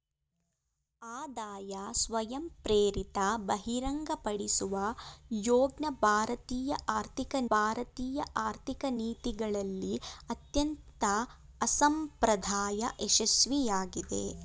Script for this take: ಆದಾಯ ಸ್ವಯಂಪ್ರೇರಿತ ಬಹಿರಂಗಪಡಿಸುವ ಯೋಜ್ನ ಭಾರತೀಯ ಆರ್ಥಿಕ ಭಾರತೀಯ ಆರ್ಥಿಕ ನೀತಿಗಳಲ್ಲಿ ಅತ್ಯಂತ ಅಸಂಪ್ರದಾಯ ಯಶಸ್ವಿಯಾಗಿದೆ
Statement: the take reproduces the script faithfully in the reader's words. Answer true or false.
true